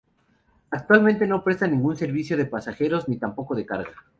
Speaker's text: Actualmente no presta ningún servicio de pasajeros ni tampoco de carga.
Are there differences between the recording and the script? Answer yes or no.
no